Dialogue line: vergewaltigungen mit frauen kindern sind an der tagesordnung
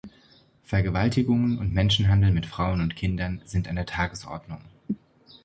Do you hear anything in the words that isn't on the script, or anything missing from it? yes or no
yes